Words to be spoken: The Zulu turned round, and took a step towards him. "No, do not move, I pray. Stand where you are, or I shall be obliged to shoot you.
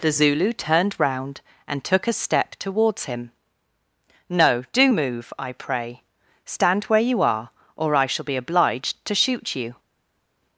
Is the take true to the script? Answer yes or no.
no